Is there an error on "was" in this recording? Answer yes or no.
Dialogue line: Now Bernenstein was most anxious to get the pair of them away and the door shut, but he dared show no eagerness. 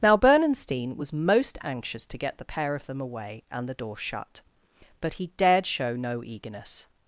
no